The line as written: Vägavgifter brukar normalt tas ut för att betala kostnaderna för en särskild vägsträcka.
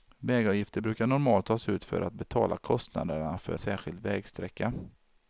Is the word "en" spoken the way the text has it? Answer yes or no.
no